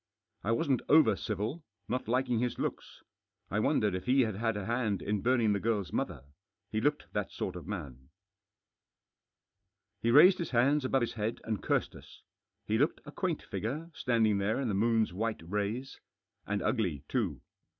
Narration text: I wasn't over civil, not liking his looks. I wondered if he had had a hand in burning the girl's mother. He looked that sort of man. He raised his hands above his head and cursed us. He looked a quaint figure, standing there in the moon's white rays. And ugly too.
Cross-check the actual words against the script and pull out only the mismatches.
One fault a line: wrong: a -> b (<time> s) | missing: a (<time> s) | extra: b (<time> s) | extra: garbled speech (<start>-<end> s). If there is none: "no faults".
no faults